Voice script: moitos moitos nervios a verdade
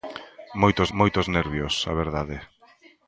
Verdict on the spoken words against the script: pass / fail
pass